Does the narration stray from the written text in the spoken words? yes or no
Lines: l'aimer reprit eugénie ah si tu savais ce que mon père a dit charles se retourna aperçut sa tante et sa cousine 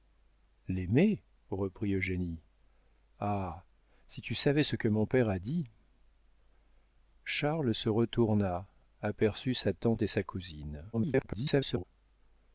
yes